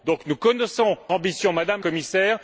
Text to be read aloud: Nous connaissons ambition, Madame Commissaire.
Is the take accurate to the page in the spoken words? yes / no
yes